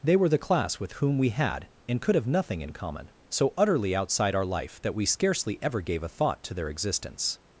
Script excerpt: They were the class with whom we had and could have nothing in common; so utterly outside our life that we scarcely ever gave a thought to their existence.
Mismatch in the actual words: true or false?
false